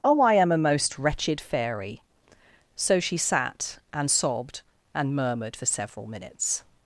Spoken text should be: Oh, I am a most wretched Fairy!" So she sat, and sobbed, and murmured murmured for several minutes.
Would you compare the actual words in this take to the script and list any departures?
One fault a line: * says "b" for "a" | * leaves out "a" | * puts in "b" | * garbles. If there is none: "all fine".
* leaves out "murmured"